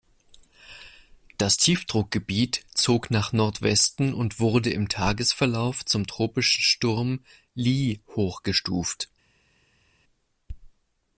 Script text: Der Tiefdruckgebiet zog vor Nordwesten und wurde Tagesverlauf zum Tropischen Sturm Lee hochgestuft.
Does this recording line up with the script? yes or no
no